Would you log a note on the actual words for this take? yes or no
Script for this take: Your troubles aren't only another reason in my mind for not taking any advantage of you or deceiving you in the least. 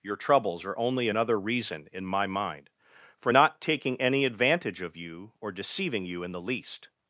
yes